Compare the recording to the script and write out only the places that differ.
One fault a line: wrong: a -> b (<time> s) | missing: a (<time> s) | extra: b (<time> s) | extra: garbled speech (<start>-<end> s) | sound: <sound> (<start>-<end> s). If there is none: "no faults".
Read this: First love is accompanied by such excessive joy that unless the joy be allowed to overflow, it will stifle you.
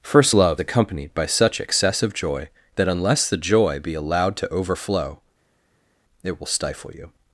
missing: is (0.6 s)